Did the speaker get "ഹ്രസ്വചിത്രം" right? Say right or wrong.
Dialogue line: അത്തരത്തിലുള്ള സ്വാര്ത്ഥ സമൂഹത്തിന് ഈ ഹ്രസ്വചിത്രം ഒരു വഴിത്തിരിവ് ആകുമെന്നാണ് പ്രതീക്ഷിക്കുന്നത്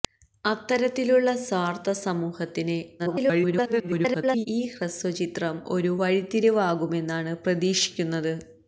right